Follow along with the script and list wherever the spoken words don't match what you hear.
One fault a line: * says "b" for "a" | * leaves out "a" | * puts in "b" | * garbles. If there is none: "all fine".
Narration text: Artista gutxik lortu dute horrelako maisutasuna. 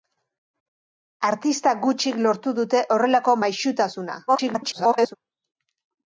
* garbles